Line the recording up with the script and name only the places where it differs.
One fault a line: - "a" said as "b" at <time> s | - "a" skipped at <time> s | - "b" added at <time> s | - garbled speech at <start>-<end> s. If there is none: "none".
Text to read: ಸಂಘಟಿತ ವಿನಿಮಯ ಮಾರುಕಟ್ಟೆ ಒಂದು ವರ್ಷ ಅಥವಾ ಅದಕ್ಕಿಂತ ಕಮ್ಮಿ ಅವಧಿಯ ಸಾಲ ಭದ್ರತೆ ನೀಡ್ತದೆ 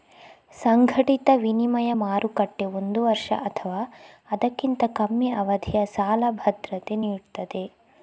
none